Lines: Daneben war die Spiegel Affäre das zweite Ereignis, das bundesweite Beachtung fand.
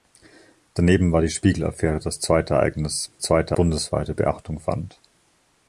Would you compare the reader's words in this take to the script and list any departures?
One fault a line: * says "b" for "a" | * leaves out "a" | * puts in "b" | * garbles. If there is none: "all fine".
* says "zweite" for "das"